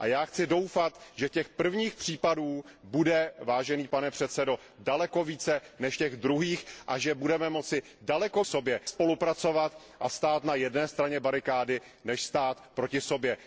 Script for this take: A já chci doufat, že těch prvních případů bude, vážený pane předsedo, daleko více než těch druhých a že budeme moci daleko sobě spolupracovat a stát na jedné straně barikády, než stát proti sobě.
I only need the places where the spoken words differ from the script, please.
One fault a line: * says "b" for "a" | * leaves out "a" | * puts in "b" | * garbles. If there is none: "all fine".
all fine